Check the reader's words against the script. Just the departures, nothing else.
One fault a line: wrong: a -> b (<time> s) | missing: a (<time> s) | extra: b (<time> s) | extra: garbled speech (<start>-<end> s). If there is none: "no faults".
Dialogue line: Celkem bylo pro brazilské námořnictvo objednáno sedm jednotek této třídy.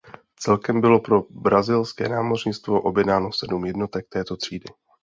no faults